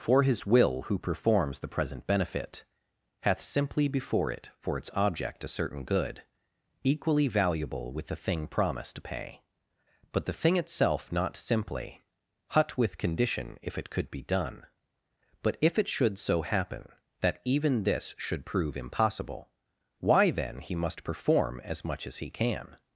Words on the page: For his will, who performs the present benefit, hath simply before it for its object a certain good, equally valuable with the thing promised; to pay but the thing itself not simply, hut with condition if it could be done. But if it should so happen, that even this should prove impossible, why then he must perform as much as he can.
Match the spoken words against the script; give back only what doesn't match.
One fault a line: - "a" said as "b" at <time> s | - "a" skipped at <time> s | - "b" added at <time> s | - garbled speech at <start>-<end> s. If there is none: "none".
none